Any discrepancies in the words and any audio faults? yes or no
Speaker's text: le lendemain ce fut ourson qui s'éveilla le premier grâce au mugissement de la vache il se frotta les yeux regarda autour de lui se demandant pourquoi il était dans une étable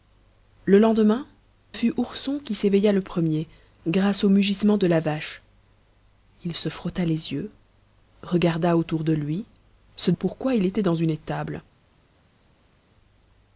yes